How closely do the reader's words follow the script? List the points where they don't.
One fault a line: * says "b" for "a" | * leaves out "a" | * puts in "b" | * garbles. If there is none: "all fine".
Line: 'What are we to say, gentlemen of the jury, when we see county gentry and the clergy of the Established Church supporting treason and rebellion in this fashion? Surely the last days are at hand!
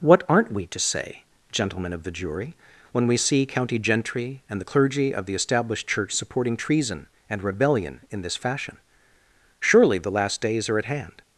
* says "aren't" for "are"